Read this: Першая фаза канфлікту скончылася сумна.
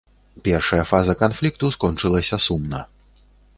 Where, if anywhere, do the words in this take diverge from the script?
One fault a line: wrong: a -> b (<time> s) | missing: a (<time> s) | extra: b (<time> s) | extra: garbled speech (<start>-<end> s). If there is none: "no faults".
no faults